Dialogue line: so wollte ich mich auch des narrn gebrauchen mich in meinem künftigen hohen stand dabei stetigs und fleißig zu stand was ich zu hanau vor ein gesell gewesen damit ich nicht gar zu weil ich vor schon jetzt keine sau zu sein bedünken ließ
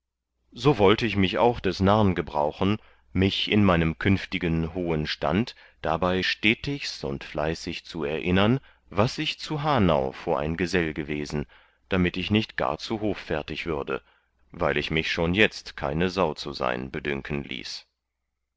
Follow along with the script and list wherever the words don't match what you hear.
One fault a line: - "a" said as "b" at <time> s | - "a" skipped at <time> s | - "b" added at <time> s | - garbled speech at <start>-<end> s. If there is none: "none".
- "stand" said as "erinnern" at 8.0 s
- "hoffärtig würde" added at 13.0 s
- "vor" said as "mich" at 14.9 s